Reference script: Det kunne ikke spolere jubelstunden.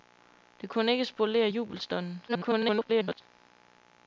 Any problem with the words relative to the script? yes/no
yes